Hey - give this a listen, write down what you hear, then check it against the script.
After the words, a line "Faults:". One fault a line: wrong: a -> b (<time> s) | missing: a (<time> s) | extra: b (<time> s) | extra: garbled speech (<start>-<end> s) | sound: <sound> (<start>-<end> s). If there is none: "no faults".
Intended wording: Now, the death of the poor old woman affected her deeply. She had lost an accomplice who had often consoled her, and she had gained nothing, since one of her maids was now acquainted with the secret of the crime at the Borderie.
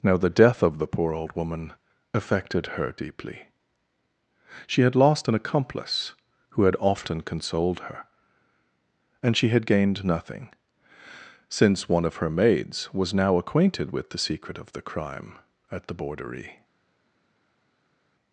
Now, the death of the poor old woman affected her deeply. She had lost an accomplice who had often consoled her, and she had gained nothing, since one of her maids was now acquainted with the secret of the crime at the Borderie.
Faults:
no faults